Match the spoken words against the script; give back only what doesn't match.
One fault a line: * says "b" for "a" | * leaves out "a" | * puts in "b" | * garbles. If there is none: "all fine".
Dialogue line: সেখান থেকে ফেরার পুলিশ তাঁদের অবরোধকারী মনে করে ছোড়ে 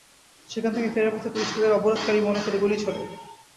* puts in "পথে"
* puts in "গুলি"